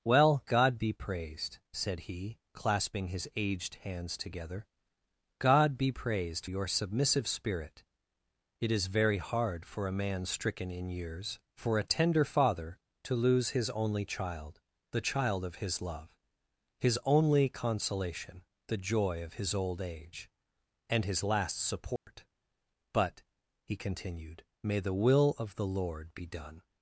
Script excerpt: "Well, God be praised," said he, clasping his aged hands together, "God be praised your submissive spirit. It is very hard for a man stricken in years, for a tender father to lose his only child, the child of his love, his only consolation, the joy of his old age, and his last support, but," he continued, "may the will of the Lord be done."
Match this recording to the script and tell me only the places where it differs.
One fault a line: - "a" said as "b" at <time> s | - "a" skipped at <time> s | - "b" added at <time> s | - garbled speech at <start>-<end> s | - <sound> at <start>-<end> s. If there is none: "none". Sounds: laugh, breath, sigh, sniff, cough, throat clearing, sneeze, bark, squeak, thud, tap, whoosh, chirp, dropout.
- dropout at 22.0-22.1 s